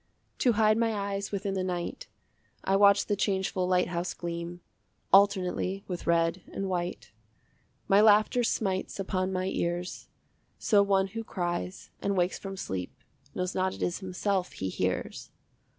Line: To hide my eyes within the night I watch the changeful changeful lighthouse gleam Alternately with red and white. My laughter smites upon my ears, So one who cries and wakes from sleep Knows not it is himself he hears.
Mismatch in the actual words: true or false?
true